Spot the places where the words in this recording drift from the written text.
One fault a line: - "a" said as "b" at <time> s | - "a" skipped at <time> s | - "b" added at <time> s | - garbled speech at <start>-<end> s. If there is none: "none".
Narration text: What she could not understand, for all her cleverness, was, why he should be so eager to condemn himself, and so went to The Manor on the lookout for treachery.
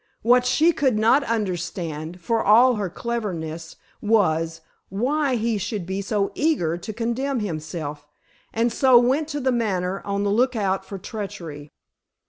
none